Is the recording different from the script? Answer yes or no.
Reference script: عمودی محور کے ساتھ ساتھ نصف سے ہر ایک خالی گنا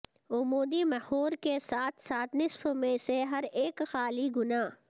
yes